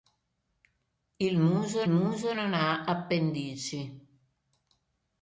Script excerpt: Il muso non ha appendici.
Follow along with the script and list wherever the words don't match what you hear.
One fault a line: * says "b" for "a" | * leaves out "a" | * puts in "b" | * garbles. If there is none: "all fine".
* puts in "muso"